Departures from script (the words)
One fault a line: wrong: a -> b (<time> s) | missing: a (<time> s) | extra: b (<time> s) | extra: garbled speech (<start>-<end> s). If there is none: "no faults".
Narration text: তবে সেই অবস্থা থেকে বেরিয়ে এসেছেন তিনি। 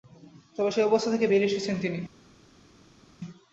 no faults